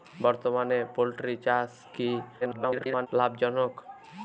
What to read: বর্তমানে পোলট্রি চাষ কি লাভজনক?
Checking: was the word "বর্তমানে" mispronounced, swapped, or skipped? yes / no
no